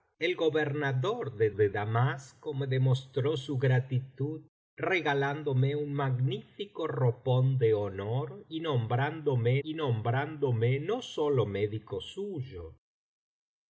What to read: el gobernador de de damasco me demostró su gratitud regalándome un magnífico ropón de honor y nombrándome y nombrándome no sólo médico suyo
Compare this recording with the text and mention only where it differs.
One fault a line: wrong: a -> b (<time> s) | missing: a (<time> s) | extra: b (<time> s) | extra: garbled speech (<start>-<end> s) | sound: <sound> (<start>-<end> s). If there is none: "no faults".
no faults